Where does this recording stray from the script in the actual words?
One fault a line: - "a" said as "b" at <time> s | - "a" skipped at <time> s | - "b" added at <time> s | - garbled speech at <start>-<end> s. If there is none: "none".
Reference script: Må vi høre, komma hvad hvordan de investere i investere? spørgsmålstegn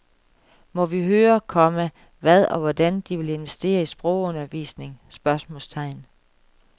- "og" added at 2.5 s
- "vil" added at 3.2 s
- "investere" said as "sprogundervisning" at 3.9 s